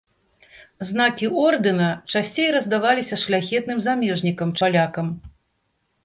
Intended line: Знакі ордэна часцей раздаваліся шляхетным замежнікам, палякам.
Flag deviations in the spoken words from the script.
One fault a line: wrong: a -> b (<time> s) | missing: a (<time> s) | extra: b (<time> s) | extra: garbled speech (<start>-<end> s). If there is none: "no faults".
no faults